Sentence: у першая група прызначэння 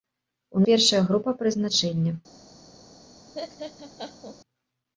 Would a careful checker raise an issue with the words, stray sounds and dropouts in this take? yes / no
yes